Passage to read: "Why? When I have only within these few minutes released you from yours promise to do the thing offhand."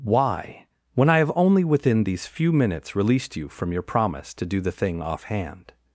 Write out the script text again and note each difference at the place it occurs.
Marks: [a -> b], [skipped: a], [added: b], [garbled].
"Why? When I have only within these few minutes released you from [yours -> your] promise to do the thing offhand."